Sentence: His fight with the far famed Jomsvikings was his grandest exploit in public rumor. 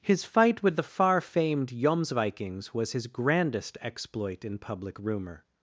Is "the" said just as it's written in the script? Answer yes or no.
yes